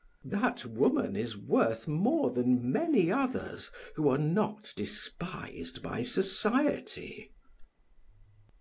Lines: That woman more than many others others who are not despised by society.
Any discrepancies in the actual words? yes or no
yes